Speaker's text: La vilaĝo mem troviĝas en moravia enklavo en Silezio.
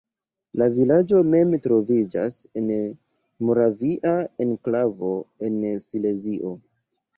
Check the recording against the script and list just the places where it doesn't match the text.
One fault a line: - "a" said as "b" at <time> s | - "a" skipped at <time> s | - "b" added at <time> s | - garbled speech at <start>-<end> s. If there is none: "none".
none